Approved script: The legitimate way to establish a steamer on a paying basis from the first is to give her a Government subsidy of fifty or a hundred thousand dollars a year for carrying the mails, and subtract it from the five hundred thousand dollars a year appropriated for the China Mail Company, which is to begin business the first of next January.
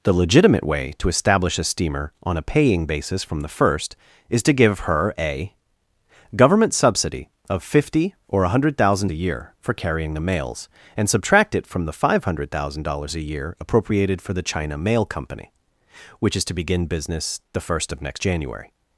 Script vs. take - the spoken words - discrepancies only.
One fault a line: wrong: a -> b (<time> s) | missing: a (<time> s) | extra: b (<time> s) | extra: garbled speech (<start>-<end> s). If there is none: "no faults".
missing: dollars (9.1 s)